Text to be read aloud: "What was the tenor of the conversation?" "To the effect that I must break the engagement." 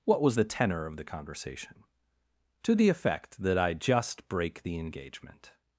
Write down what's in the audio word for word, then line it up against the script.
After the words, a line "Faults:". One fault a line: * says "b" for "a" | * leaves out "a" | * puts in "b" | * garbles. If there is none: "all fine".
"What was the tenor of the conversation?" "To the effect that I just break the engagement."
Faults:
* says "just" for "must"